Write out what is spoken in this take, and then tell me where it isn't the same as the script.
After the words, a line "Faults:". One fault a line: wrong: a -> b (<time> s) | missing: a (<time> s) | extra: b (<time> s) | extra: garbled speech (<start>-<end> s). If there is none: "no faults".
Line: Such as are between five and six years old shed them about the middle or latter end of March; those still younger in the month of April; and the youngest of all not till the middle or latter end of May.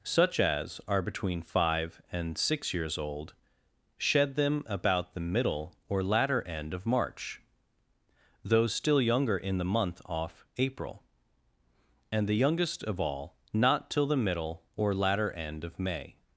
Such as are between five and six years old shed them about the middle or latter end of March; those still younger in the month off April; and the youngest of all not till the middle or latter end of May.
Faults:
wrong: of -> off (10.1 s)